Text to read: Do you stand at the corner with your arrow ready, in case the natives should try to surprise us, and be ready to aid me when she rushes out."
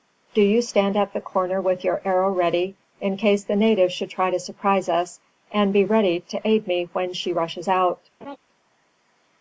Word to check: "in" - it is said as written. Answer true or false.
true